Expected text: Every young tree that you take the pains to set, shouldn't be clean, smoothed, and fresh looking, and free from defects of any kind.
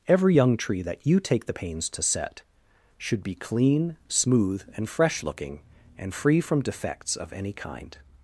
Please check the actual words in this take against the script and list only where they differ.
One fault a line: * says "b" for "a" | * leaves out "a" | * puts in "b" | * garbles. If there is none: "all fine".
* says "should" for "shouldn't"
* says "smooth" for "smoothed"